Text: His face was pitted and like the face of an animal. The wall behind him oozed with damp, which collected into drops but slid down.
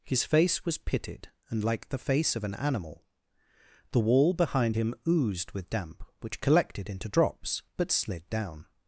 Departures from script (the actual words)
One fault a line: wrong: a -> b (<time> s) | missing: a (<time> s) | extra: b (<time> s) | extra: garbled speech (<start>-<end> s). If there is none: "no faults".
no faults